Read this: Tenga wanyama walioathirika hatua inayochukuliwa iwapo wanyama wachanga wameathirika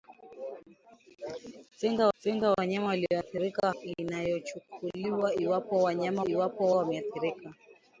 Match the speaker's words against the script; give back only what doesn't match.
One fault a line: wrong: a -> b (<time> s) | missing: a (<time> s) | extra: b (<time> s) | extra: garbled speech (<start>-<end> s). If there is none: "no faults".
extra: tenga (2.2 s)
missing: hatua (3.7 s)
wrong: wachanga -> iwapo (6.2 s)